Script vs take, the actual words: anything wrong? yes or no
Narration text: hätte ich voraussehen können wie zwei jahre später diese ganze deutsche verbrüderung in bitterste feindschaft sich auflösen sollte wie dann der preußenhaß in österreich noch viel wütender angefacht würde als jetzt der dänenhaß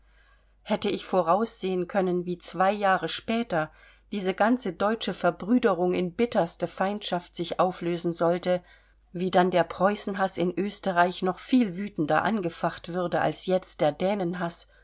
no